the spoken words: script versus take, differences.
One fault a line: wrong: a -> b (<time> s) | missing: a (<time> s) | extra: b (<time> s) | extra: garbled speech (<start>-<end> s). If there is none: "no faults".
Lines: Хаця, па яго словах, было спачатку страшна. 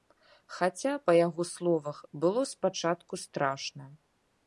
no faults